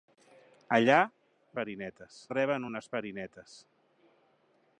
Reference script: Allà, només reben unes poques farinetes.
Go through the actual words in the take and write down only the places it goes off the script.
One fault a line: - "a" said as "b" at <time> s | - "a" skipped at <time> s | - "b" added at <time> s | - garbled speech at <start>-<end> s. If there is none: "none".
- "només" said as "farinetes" at 1.6 s
- "poques" skipped at 2.9 s